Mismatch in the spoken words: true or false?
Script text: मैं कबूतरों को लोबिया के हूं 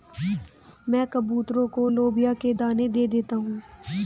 true